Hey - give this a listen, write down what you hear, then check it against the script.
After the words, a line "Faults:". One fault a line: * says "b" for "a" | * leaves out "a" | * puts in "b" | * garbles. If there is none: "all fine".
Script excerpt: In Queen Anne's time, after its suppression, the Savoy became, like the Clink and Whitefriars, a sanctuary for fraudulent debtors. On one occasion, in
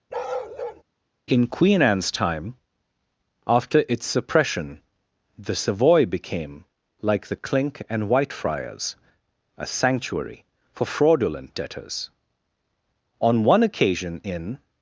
In Queen Anne's time, after its suppression, the Savoy became, like the Clink and Whitefriars, a sanctuary for fraudulent debtors. On one occasion, in
Faults:
all fine